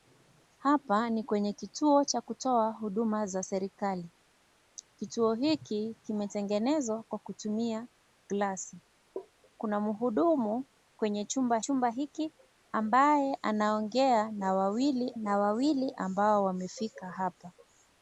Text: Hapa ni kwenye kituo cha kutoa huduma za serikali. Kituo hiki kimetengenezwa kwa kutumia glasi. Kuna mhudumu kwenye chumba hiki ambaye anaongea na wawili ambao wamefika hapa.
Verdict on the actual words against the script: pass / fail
fail